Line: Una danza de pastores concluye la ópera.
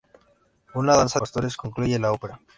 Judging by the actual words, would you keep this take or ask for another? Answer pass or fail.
fail